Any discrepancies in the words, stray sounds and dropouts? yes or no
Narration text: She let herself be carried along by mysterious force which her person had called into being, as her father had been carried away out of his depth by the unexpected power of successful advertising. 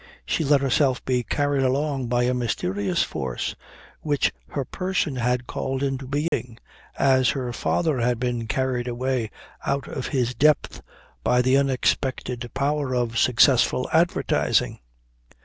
yes